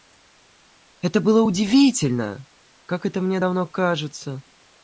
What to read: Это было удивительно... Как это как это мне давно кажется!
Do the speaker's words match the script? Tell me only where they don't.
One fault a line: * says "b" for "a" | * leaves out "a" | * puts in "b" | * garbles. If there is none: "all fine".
* leaves out "как это"